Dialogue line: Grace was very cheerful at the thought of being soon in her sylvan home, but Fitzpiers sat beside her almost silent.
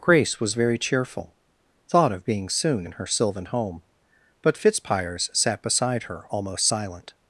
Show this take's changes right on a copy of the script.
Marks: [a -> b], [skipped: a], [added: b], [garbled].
Grace was very cheerful [skipped: at the] thought of being soon in her sylvan home, but Fitzpiers sat beside her almost silent.